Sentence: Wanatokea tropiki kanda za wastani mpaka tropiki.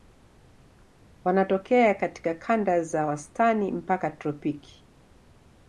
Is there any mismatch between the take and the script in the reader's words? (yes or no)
yes